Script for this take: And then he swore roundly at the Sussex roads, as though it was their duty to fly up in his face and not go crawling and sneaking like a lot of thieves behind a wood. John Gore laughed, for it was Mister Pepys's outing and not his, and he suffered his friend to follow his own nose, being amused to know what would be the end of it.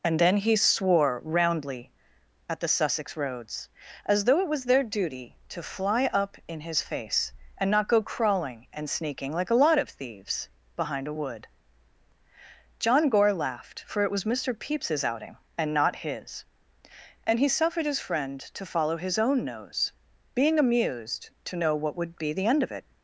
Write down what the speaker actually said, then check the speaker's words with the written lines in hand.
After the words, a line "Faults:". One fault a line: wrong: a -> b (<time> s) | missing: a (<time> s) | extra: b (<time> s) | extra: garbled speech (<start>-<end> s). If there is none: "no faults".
And then he swore roundly at the Sussex roads, as though it was their duty to fly up in his face and not go crawling and sneaking like a lot of thieves behind a wood. John Gore laughed, for it was Mister Pepys's outing and not his, and he suffered his friend to follow his own nose, being amused to know what would be the end of it.
Faults:
no faults